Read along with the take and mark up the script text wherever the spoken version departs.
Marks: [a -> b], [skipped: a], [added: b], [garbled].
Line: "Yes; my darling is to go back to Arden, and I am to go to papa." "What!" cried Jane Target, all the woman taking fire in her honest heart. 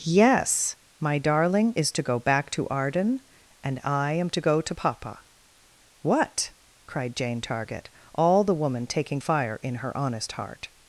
"Yes; my darling is to go back to Arden, and I am to go to papa." "What!" cried Jane Target, all the woman taking fire in her honest heart.